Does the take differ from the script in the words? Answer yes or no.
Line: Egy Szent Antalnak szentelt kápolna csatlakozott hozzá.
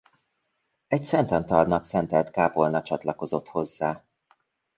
no